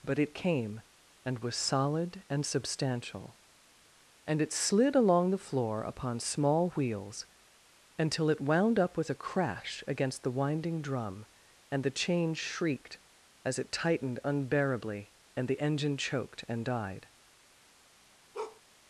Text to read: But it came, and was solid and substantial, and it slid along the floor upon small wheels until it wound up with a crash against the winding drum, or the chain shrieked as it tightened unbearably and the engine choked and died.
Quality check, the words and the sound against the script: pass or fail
fail